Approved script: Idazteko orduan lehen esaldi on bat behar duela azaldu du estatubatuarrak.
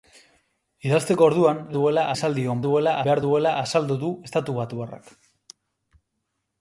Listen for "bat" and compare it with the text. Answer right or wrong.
wrong